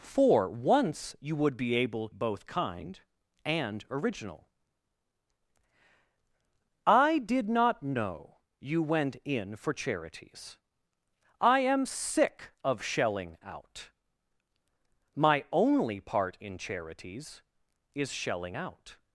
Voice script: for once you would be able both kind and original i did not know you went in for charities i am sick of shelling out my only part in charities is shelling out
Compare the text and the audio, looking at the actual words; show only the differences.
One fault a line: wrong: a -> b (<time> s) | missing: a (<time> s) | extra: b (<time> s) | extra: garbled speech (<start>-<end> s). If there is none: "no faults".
no faults